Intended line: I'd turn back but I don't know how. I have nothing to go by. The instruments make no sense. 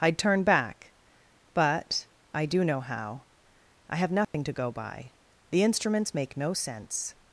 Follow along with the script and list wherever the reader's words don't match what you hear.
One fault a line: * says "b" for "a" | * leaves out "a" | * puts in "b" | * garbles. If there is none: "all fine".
* says "do" for "don't"